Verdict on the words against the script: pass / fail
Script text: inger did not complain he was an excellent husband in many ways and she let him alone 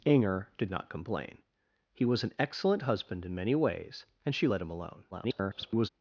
fail